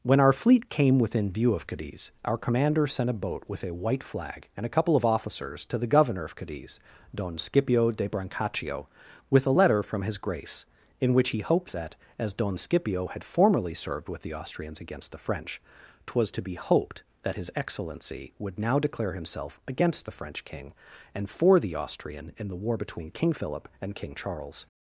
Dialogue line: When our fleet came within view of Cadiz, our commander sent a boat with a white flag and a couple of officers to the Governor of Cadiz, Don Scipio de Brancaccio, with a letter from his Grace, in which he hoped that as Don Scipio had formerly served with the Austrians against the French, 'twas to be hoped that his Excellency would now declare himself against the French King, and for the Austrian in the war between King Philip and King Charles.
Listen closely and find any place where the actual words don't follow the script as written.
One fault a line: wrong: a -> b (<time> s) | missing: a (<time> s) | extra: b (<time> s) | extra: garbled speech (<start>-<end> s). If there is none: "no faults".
no faults